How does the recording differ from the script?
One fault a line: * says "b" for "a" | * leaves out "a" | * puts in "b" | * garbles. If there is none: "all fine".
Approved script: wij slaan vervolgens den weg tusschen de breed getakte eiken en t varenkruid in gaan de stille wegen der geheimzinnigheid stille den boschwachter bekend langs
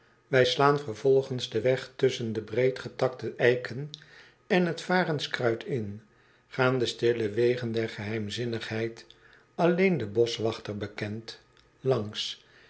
* says "alleen" for "stille"